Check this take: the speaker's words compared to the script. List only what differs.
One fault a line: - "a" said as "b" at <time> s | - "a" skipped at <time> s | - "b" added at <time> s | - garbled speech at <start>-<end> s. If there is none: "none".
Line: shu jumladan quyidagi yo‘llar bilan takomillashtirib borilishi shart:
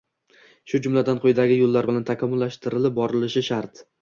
none